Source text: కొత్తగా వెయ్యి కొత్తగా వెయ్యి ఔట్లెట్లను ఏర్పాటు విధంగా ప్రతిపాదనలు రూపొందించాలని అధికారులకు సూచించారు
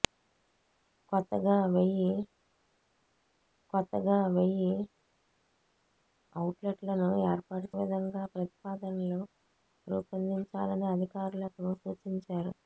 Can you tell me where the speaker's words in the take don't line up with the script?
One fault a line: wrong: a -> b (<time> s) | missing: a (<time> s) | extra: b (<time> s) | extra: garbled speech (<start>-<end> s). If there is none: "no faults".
no faults